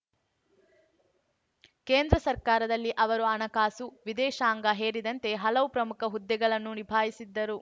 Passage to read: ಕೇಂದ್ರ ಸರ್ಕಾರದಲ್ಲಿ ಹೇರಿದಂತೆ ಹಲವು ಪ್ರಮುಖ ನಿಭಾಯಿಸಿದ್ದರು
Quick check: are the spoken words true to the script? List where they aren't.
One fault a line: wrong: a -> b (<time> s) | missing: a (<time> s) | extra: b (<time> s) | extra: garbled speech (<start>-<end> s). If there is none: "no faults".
extra: ಅವರು ಹಣಕಾಸು ವಿದೇಶಾಂಗ (3.0 s)
extra: ಹುದ್ದೆಗಳನ್ನು (6.0 s)